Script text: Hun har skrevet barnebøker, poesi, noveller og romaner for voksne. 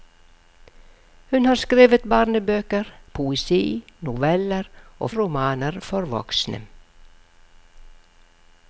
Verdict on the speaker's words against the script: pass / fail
pass